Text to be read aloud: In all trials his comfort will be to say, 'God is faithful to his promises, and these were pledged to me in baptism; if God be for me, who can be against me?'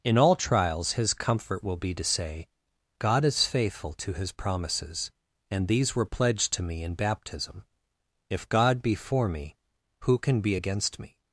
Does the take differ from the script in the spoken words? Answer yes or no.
no